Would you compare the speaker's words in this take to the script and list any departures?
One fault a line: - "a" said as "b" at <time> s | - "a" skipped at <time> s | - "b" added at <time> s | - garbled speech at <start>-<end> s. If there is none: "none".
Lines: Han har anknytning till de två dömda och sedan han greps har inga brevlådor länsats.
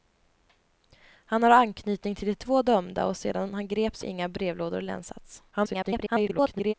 - "har" skipped at 4.0 s
- garbled speech at 5.5-6.7 s